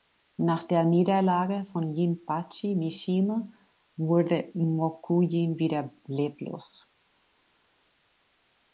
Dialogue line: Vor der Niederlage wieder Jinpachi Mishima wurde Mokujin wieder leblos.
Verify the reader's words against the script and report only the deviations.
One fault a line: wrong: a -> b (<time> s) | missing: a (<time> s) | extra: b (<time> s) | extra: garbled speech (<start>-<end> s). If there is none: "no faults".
wrong: Vor -> Nach (0.4 s)
wrong: wieder -> von (1.7 s)